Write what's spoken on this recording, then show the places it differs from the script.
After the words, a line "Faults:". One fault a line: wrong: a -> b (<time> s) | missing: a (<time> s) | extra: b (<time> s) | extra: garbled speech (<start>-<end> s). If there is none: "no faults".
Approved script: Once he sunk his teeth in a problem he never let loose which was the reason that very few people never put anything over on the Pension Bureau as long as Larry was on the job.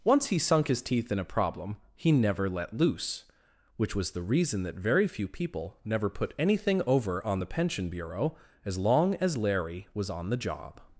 Once he sunk his teeth in a problem he never let loose which was the reason that very few people never put anything over on the Pension Bureau as long as Larry was on the job.
Faults:
no faults